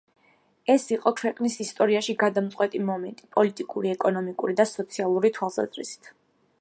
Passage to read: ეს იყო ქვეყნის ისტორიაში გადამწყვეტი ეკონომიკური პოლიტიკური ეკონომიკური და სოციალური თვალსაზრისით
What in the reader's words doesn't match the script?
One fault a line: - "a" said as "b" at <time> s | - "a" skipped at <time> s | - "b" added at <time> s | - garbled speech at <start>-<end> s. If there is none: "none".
- "ეკონომიკური" said as "მომენტი" at 2.9 s